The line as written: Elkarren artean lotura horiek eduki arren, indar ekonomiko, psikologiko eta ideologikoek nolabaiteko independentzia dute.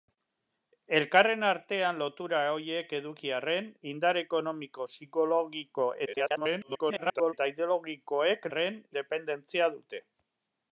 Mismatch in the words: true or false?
true